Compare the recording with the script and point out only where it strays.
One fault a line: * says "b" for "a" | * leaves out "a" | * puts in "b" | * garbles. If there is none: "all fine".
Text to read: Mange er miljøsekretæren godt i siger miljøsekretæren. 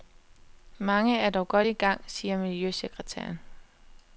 * says "dog" for "miljøsekretæren"
* puts in "gang"